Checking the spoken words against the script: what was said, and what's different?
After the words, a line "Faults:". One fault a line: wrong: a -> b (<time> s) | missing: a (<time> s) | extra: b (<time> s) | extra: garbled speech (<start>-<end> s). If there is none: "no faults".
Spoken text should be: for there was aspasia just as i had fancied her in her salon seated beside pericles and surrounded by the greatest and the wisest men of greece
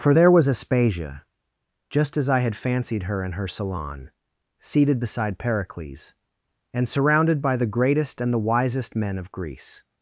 for there was aspasia just as i had fancied her in her salon seated beside pericles and surrounded by the greatest and the wisest men of greece
Faults:
no faults